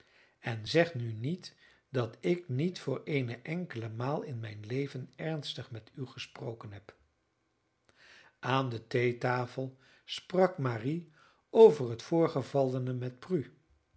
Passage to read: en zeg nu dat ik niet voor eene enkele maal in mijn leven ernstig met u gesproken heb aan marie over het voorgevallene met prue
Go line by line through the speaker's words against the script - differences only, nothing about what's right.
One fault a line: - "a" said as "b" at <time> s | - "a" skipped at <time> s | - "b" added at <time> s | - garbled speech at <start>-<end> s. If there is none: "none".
- "niet" added at 1.1 s
- "de theetafel sprak" added at 8.7 s